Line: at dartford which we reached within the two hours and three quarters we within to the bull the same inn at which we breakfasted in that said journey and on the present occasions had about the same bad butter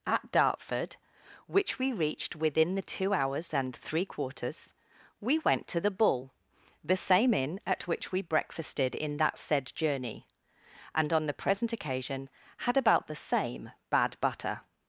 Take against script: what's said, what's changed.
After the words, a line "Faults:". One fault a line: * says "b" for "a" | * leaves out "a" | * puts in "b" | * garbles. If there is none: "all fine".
at dartford which we reached within the two hours and three quarters we went to the bull the same inn at which we breakfasted in that said journey and on the present occasion had about the same bad butter
Faults:
* says "went" for "within"
* says "occasion" for "occasions"